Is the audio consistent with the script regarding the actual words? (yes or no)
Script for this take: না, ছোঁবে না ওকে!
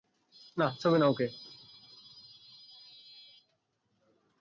yes